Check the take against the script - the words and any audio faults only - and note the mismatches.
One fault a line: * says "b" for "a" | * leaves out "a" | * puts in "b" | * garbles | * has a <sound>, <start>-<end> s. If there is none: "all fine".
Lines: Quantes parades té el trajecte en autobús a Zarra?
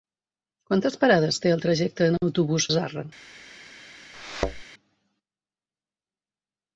* has a thud, 4.1-4.6 s